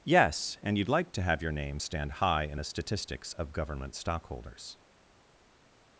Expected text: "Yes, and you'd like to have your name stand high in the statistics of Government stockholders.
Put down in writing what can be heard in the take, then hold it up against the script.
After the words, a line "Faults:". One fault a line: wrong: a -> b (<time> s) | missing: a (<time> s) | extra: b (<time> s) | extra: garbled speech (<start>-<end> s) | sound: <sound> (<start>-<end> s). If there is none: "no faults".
"Yes, and you'd like to have your name stand high in the statistics of Government stockholders.
Faults:
no faults